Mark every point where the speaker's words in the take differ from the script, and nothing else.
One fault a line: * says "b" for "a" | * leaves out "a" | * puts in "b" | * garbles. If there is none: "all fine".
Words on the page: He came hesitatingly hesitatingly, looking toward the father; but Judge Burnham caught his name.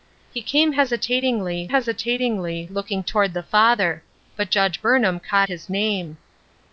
all fine